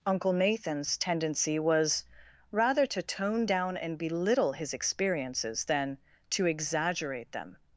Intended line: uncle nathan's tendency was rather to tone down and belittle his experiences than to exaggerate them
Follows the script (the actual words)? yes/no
yes